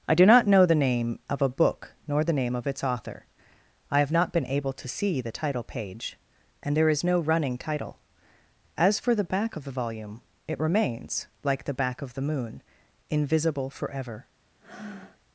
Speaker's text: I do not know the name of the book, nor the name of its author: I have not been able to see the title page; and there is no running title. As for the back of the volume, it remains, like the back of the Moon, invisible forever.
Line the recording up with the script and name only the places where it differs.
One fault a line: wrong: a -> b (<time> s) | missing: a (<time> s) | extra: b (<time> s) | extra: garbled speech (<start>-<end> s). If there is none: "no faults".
wrong: the -> a (1.4 s)